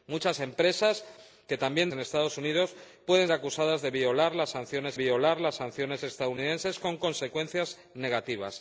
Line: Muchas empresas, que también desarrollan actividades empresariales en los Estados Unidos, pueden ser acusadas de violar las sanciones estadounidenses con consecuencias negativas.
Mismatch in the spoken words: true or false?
true